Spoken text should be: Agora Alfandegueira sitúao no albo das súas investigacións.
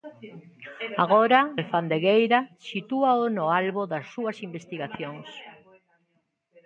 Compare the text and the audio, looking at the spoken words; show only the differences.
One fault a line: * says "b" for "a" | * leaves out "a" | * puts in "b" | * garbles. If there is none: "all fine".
all fine